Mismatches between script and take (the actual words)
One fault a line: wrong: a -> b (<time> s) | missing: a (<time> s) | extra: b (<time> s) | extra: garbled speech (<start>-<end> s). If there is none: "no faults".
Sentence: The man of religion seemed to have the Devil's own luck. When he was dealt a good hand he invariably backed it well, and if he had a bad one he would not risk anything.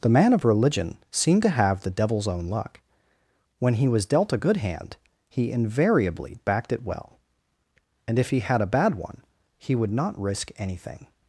no faults